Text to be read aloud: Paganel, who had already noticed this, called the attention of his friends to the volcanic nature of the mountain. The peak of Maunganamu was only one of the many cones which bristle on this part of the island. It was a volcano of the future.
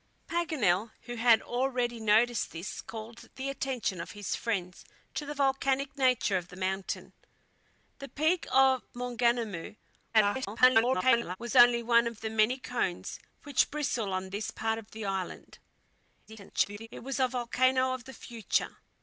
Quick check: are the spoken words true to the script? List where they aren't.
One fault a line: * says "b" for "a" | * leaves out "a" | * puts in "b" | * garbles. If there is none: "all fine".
* garbles
* garbles